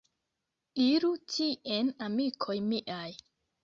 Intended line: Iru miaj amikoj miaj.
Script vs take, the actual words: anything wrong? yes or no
yes